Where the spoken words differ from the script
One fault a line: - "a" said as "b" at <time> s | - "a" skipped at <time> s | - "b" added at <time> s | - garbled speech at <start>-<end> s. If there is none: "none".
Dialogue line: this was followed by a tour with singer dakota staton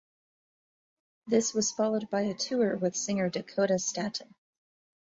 none